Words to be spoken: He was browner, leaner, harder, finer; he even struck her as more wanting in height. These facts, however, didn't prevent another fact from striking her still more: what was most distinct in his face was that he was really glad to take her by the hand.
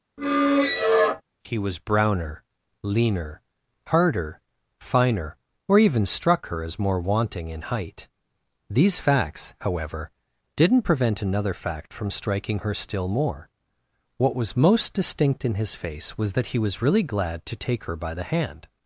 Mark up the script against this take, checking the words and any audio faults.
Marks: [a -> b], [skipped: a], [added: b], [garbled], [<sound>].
[squeak] He was browner, leaner, harder, finer; [he -> or] even struck her as more wanting in height. These facts, however, didn't prevent another fact from striking her still more: what was most distinct in his face was that he was really glad to take her by the hand.